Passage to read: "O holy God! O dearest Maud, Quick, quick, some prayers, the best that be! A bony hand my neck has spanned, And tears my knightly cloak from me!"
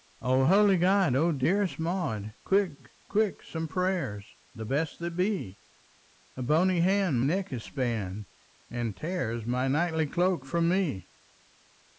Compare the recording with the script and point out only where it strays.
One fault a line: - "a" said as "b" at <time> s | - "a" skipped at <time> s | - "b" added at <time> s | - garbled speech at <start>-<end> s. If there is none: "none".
- "my" skipped at 7.2 s